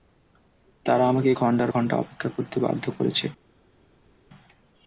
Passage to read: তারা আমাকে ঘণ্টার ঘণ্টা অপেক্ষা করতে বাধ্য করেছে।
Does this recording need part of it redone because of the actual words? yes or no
no